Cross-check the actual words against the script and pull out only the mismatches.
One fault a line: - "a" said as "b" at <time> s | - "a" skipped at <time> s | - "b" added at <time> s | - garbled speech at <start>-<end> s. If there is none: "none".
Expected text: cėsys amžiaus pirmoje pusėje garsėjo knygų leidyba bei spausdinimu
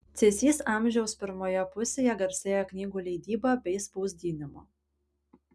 none